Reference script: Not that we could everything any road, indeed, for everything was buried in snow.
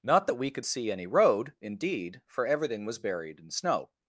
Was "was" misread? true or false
false